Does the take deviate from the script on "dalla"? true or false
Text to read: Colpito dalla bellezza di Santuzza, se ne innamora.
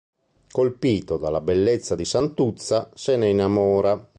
false